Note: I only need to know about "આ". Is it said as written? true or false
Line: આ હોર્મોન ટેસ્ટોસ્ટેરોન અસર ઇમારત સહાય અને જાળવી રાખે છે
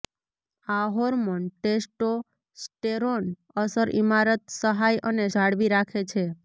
true